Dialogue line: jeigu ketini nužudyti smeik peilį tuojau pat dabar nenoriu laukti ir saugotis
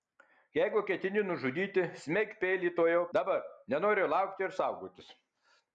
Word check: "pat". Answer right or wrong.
wrong